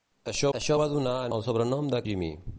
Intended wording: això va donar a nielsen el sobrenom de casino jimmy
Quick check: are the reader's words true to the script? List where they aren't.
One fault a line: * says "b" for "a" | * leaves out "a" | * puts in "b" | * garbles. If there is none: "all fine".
* puts in "això"
* leaves out "nielsen"
* leaves out "casino"